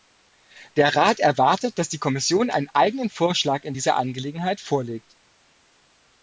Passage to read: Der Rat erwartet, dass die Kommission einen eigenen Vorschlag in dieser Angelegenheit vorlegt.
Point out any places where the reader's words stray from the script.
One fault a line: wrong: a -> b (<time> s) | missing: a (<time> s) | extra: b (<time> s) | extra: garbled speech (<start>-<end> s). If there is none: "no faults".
no faults